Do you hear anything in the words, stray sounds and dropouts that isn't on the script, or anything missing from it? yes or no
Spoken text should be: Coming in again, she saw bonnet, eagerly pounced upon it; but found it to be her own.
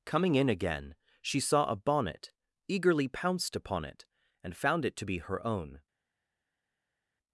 yes